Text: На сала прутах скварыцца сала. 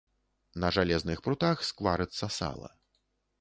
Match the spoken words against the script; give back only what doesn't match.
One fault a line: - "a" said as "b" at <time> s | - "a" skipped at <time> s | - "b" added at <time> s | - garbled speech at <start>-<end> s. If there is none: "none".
- "сала" said as "жалезных" at 0.8 s